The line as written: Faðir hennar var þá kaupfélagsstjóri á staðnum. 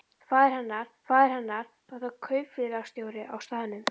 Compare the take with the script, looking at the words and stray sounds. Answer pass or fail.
fail